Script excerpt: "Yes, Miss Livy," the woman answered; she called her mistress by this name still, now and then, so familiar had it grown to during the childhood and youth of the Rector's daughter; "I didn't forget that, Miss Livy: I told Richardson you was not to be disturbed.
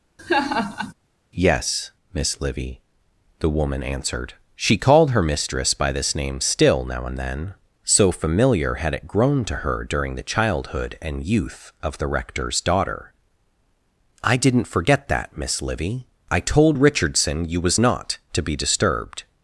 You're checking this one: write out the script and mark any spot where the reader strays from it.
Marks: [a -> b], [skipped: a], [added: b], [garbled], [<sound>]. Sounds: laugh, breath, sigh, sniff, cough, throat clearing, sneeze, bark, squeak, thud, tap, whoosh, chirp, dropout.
[laugh] "Yes, Miss Livy," the woman answered; she called her mistress by this name still, now and then, so familiar had it grown to [added: her] during the childhood and youth of the Rector's daughter; "I didn't forget that, Miss Livy: I told Richardson you was not to be disturbed.